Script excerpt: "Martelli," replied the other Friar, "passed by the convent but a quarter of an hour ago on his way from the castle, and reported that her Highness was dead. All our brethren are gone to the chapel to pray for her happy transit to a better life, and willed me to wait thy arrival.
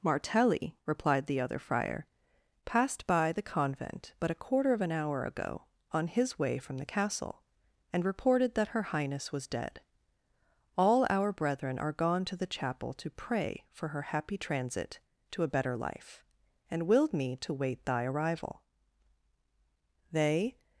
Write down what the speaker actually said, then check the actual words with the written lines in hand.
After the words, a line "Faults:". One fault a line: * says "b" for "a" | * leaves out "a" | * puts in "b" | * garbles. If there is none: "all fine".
"Martelli," replied the other Friar, "passed by the convent but a quarter of an hour ago on his way from the castle, and reported that her Highness was dead. All our brethren are gone to the chapel to pray for her happy transit to a better life, and willed me to wait thy arrival. They
Faults:
* puts in "They"